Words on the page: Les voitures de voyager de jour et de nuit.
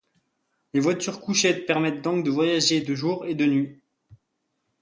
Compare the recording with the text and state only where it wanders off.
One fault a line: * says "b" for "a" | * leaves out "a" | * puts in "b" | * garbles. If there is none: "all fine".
* puts in "couchettes permettent donc"